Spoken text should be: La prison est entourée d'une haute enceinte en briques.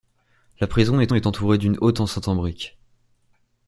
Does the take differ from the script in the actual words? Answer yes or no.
yes